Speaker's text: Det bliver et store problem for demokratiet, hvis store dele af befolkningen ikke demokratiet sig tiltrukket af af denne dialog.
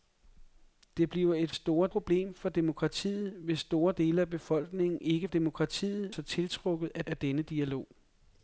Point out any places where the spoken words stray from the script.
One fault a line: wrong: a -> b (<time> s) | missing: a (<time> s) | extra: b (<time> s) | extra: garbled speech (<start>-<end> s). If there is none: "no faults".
no faults